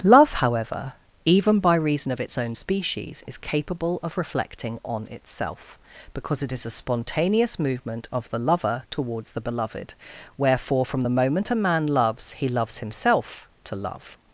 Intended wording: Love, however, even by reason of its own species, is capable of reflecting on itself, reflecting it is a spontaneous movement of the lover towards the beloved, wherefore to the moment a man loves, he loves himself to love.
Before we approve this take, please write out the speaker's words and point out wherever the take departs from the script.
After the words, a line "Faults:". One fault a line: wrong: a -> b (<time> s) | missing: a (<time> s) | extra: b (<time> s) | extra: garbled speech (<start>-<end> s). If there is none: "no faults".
Love, however, even by reason of its own species, is capable of reflecting on itself, because it is a spontaneous movement of the lover towards the beloved, wherefore from the moment a man loves, he loves himself to love.
Faults:
wrong: reflecting -> because (6.1 s)
wrong: to -> from (10.8 s)